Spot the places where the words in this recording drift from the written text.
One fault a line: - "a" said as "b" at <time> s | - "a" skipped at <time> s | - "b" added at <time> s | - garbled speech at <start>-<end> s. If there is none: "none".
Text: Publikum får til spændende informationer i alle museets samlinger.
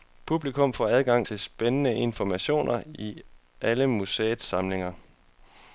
- "adgang" added at 0.9 s